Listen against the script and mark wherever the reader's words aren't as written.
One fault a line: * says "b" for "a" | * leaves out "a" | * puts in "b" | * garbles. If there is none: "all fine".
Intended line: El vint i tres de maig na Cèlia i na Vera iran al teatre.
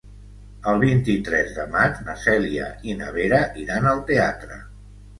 all fine